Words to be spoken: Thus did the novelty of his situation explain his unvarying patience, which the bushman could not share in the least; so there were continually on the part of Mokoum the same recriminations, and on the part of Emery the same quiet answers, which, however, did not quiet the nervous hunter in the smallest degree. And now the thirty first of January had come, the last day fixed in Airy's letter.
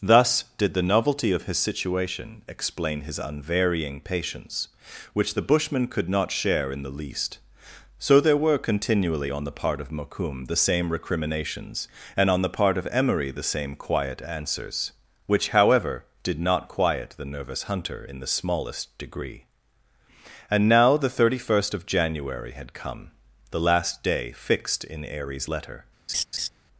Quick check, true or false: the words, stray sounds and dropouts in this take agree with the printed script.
false